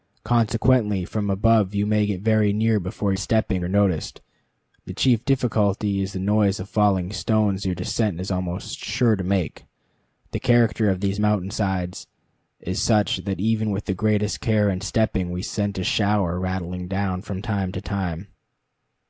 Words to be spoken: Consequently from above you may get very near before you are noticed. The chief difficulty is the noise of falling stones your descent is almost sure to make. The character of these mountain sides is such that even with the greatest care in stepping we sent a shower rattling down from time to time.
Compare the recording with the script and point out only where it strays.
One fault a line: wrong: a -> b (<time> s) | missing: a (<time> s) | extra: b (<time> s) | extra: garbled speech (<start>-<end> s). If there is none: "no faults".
wrong: you -> stepping (3.1 s)